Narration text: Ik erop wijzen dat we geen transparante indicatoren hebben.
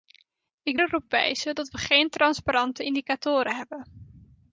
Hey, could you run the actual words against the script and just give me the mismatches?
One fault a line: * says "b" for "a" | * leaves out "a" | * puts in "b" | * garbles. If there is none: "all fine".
all fine